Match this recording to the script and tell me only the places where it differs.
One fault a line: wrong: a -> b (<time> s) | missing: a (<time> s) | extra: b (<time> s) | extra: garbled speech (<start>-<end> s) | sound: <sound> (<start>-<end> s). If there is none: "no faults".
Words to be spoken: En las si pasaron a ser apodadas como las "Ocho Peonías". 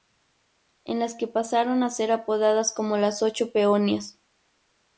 wrong: si -> que (1.1 s)